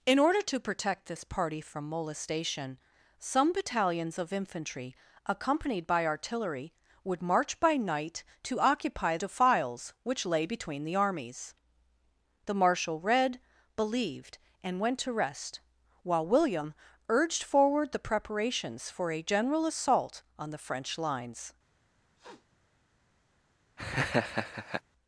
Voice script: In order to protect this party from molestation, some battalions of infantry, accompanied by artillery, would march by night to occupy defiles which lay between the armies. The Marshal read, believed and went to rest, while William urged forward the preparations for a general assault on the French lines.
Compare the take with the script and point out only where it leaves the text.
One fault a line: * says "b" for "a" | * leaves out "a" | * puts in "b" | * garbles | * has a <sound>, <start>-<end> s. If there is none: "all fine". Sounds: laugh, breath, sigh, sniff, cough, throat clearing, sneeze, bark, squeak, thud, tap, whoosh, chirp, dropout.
* has a sniff, 22.2-22.5 s
* has a laugh, 23.8-24.8 s